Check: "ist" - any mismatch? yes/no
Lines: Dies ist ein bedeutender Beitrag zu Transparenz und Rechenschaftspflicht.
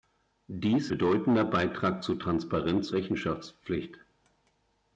yes